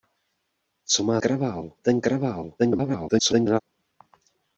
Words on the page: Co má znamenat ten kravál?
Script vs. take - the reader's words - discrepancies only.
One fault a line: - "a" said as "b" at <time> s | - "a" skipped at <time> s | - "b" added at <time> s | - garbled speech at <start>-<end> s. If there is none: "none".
- "znamenat" said as "kravál" at 1.2 s
- garbled speech at 2.6-3.6 s